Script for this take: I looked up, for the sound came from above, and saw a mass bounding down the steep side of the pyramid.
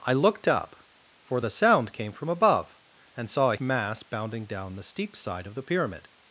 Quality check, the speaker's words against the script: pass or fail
pass